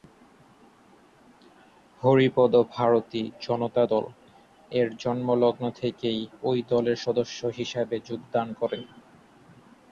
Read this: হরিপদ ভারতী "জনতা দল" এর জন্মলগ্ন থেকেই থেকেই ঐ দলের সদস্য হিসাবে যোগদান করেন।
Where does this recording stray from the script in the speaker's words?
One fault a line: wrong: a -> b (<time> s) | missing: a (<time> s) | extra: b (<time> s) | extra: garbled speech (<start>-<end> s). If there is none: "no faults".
missing: থেকেই (6.2 s)